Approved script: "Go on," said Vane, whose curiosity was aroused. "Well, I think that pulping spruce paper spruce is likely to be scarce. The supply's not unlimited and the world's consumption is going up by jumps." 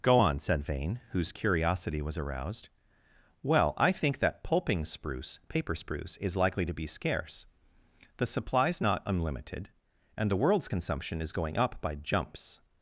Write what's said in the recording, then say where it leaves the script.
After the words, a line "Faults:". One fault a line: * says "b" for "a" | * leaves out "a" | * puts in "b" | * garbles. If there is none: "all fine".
"Go on," said Vane, whose curiosity was aroused. "Well, I think that pulping spruce paper spruce is likely to be scarce. The supply's not unlimited and the world's consumption is going up by jumps."
Faults:
all fine